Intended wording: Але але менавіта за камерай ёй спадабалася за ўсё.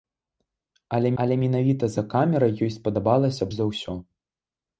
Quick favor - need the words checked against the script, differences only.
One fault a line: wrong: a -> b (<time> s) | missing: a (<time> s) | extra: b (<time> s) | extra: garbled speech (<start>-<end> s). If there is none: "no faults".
no faults